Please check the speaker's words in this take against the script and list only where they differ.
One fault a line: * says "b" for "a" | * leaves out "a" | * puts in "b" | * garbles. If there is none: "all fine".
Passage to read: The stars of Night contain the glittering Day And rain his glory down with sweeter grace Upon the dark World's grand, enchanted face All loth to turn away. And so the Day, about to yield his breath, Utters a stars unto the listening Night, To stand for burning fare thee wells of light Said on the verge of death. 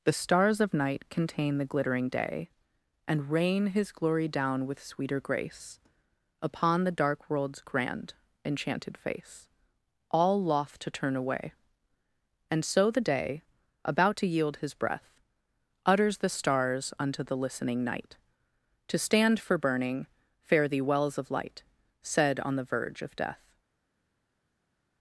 * says "the" for "a"